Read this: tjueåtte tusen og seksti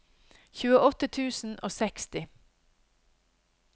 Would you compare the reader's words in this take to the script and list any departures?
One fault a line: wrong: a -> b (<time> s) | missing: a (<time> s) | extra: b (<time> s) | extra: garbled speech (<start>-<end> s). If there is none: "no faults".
no faults